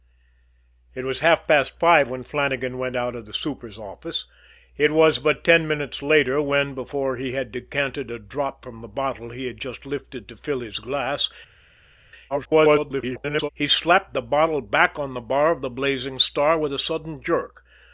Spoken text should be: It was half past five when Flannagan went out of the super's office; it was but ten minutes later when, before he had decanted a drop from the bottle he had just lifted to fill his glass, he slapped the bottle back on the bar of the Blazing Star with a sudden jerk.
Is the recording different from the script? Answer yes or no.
yes